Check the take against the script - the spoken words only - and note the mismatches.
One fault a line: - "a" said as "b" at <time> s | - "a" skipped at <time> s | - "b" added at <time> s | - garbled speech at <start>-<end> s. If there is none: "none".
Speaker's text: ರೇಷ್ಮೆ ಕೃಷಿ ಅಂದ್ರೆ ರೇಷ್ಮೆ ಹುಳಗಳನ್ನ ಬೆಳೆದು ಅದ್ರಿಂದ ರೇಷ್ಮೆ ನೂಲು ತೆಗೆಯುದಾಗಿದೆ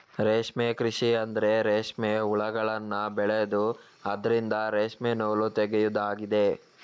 none